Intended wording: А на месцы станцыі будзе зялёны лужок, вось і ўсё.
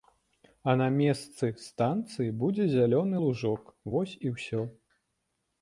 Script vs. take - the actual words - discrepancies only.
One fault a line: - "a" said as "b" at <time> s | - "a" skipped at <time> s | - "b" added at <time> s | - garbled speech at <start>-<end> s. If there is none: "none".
none